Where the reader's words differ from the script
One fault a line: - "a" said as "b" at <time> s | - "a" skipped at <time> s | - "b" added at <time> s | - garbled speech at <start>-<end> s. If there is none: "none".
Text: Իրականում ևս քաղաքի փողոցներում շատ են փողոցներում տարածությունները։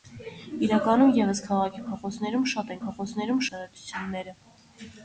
none